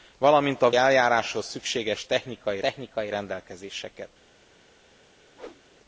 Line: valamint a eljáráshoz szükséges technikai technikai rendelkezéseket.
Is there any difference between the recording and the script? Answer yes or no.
no